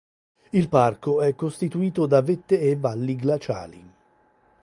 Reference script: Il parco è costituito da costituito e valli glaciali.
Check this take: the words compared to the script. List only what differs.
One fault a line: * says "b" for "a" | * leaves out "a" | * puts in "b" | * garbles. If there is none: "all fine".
* says "vette" for "costituito"